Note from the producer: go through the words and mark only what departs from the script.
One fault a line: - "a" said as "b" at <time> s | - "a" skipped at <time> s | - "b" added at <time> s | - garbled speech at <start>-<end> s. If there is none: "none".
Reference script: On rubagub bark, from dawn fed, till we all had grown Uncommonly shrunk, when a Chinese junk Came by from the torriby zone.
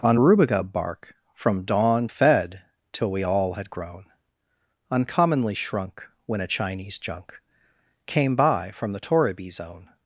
none